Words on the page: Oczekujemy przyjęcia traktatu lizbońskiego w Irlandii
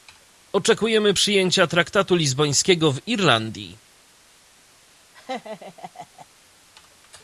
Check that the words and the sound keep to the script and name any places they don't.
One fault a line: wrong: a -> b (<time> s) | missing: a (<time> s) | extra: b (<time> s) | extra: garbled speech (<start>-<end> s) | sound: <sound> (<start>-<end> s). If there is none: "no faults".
sound: laugh (5.1-6.3 s)